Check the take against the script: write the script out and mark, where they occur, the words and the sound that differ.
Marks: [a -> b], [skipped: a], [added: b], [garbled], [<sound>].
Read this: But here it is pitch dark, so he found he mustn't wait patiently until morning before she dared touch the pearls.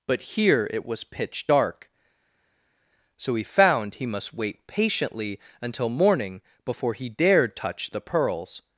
But here it [is -> was] pitch dark, so he found he [mustn't -> must] wait patiently until morning before [she -> he] dared touch the pearls.